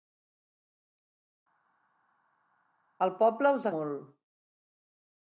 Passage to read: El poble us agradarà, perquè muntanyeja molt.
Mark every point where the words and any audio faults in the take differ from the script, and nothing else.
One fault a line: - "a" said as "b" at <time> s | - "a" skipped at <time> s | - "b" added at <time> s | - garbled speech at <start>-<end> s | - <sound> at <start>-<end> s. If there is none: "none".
- "agradarà perquè muntanyeja" skipped at 3.7 s